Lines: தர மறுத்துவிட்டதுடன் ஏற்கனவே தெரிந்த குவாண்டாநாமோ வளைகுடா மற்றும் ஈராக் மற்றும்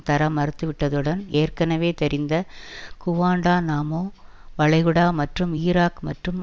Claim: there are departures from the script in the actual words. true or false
false